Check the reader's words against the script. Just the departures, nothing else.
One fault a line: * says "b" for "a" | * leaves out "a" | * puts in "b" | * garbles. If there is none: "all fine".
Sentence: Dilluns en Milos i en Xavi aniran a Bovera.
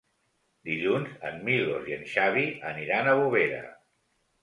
all fine